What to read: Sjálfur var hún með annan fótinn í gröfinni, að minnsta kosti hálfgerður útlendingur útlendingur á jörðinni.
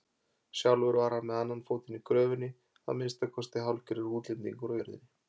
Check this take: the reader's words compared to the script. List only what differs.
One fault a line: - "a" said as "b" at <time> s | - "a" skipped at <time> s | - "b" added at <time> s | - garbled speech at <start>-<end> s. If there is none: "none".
- "hún" said as "hann" at 1.1 s
- "útlendingur" skipped at 4.7 s